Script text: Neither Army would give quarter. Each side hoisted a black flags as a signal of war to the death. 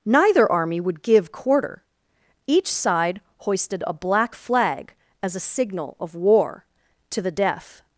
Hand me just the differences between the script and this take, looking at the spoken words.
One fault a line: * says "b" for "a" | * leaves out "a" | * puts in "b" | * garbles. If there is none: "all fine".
* says "flag" for "flags"